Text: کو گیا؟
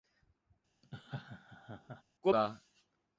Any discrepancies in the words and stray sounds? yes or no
yes